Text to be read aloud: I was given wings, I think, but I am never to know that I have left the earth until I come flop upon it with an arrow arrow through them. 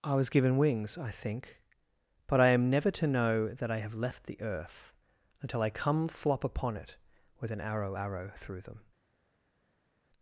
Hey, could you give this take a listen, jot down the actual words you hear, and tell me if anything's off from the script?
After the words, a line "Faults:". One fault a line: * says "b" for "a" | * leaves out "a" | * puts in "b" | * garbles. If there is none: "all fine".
I was given wings, I think, but I am never to know that I have left the earth until I come flop upon it with an arrow arrow through them.
Faults:
all fine